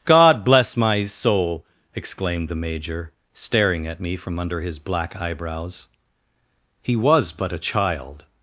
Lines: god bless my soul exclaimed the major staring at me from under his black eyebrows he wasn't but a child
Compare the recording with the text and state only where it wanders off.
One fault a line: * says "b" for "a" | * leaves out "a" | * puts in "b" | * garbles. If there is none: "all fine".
* says "was" for "wasn't"